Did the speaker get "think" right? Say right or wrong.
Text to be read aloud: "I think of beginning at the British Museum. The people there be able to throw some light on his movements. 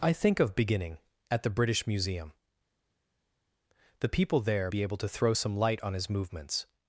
right